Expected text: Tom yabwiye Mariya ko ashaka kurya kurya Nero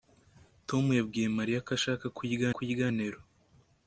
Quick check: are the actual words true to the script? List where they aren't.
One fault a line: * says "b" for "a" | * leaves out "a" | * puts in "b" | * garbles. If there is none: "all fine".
all fine